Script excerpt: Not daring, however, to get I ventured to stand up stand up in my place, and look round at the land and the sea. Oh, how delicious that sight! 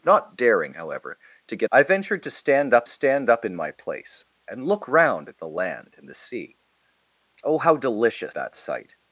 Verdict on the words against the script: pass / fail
pass